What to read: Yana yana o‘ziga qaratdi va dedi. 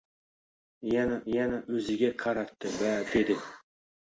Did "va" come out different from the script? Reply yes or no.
no